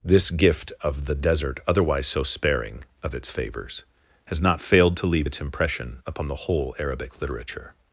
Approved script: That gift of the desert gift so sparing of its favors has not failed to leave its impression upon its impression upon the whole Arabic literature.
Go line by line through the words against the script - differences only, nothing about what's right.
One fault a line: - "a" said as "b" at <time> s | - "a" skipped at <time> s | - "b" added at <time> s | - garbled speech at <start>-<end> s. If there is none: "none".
- "That" said as "This" at 0.0 s
- "gift" said as "otherwise" at 1.7 s
- "its impression upon" skipped at 6.3 s